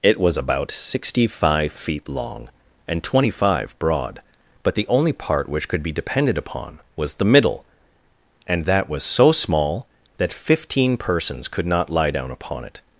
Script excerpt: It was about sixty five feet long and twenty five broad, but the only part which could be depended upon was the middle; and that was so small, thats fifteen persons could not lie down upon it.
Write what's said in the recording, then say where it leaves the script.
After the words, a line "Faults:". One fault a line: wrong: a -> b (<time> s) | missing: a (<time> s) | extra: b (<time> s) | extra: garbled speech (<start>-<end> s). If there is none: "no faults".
It was about sixty five feet long and twenty five broad, but the only part which could be depended upon was the middle; and that was so small, that fifteen persons could not lie down upon it.
Faults:
wrong: thats -> that (10.2 s)